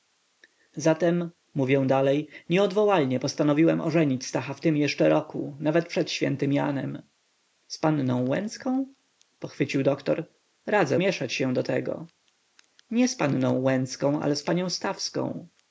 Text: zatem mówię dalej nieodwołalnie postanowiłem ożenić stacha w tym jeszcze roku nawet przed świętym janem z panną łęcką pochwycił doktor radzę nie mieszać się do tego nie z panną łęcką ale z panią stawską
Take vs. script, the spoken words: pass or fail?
fail